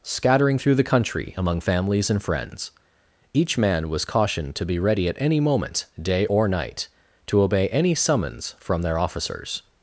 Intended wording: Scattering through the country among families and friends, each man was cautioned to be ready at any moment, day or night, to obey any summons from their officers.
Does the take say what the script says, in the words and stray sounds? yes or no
yes